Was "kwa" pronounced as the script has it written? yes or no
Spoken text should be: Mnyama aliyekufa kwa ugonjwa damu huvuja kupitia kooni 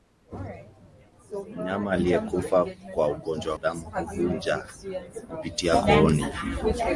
yes